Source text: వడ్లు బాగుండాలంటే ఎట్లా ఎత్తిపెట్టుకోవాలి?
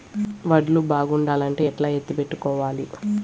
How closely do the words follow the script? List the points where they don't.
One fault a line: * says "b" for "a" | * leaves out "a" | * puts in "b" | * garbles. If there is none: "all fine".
all fine